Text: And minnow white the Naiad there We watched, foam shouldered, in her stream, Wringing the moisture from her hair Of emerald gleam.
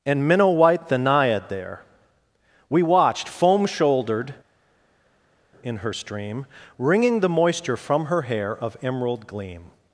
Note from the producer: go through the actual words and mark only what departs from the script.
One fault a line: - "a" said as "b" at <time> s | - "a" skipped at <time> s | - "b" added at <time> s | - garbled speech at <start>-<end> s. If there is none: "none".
none